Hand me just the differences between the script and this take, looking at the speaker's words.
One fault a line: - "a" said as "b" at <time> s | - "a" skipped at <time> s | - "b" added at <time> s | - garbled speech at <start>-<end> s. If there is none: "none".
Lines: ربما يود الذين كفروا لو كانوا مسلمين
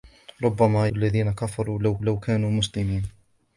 - "يود" skipped at 0.9 s
- "لو" added at 2.0 s